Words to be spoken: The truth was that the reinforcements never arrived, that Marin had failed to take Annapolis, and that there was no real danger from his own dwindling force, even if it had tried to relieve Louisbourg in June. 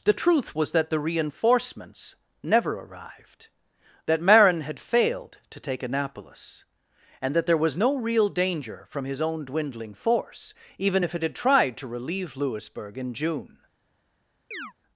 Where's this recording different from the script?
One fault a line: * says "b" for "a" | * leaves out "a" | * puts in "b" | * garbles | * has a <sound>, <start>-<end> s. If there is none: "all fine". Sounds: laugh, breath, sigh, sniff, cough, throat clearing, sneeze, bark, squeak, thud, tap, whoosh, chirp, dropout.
* has a chirp, 14.5-14.7 s